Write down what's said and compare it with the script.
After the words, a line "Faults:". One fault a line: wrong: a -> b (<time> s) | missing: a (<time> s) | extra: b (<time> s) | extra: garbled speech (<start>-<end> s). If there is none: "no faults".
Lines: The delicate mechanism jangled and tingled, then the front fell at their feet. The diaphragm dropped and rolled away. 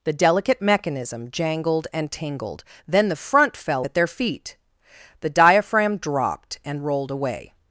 The delicate mechanism jangled and tingled, then the front fell at their feet. The diaphragm dropped and rolled away.
Faults:
no faults